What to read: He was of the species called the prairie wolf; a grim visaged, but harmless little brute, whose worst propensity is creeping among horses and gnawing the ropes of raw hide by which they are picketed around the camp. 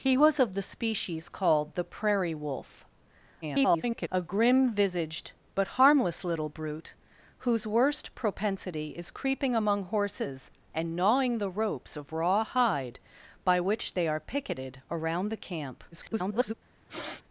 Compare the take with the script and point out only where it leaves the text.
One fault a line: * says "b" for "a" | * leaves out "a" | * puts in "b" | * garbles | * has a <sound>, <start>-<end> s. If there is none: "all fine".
* garbles
* garbles
* has a sniff, 16.9-17.2 s